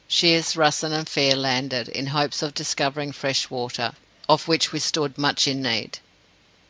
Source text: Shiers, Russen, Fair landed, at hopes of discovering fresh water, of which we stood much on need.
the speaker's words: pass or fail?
fail